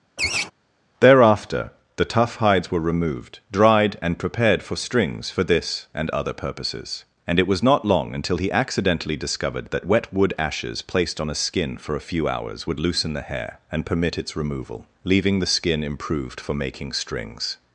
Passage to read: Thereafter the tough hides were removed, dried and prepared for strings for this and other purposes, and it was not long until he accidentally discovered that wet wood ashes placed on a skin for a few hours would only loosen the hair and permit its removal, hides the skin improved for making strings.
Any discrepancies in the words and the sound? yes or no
yes